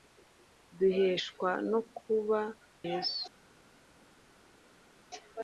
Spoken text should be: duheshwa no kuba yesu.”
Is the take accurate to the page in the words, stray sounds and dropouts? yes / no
yes